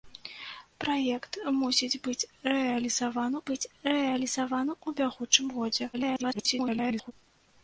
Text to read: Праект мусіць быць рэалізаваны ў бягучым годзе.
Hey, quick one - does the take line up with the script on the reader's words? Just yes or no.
no